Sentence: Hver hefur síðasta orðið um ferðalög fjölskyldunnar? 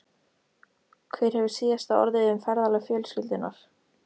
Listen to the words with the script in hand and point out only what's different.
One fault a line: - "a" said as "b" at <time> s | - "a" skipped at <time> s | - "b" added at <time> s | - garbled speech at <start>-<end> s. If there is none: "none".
none